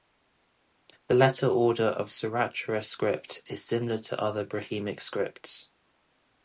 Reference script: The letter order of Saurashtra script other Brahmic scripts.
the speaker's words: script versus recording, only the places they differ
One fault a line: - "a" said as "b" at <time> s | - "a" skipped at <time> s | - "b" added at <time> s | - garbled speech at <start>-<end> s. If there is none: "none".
- "is similar to" added at 3.5 s